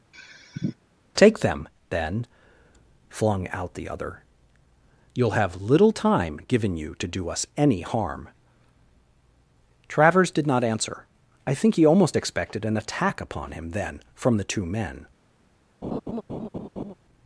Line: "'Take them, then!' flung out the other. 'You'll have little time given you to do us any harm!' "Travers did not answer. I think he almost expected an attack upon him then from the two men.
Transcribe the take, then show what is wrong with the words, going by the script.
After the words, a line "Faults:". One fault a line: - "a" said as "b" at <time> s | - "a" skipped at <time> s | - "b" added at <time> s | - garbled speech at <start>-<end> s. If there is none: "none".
"'Take them, then!' flung out the other. 'You'll have little time given you to do us any harm!' "Travers did not answer. I think he almost expected an attack upon him then from the two men.
Faults:
none